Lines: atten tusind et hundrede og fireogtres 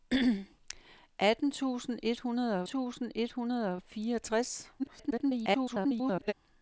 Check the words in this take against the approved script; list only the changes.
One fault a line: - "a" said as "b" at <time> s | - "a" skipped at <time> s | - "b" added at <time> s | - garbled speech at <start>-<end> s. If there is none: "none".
- "tusind et hundrede" added at 2.6 s
- garbled speech at 4.8-6.3 s